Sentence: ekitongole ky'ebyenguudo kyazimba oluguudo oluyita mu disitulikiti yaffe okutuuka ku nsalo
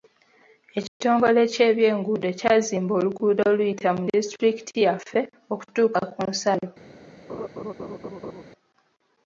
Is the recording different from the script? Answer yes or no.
no